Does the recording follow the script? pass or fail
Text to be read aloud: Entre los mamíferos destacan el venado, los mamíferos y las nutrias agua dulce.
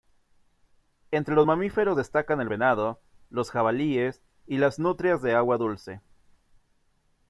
fail